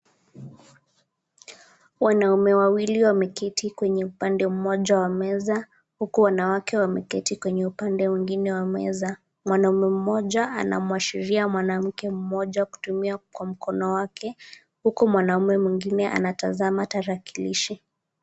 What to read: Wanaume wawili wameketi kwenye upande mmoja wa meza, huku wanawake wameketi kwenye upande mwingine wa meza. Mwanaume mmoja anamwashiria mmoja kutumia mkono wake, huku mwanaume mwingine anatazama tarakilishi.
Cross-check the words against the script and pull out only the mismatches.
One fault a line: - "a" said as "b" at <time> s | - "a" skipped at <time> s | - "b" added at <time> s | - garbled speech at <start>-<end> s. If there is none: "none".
- "mwanamke" added at 11.5 s
- "kwa" added at 13.2 s